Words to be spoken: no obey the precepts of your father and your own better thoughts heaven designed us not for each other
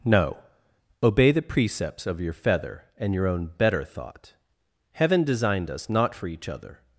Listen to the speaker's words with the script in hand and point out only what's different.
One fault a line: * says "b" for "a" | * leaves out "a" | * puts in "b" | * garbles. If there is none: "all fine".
* says "feather" for "father"
* says "thought" for "thoughts"